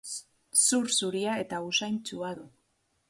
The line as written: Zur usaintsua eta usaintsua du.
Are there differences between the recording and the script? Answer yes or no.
yes